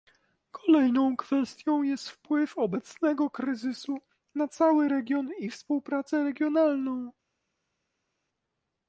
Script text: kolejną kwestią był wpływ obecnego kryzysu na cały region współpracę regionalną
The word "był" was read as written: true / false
false